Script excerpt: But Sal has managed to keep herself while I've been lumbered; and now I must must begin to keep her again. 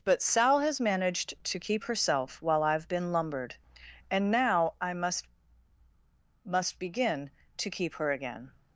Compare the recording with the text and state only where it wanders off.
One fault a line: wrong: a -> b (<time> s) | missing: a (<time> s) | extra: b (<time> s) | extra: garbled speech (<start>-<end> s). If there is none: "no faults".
no faults